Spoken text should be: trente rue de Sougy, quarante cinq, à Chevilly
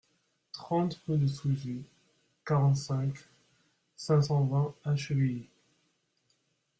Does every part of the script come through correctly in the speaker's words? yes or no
no